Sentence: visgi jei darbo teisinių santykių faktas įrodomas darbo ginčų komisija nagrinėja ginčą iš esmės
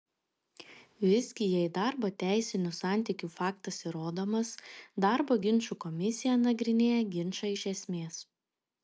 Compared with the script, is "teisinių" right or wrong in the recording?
right